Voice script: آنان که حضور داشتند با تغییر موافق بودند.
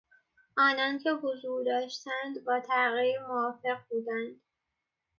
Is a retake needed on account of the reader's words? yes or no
no